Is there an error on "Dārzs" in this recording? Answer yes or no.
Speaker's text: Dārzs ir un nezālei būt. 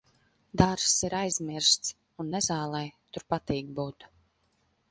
no